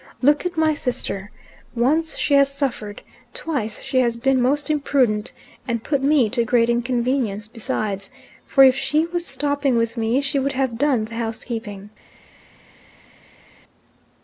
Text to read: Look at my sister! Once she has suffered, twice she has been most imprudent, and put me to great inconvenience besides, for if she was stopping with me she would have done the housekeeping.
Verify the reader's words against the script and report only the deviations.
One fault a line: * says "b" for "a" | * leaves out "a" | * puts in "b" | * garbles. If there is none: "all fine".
all fine